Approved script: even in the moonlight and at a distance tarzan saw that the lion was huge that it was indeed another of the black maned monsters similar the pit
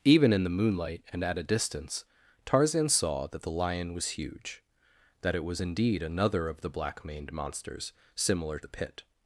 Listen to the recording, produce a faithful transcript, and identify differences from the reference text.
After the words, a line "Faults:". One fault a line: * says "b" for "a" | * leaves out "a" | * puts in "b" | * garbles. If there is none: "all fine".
even in the moonlight and at a distance tarzan saw that the lion was huge that it was indeed another of the black maned monsters similar the pit
Faults:
all fine